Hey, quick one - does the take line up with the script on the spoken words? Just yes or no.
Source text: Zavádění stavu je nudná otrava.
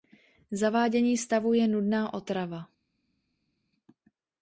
yes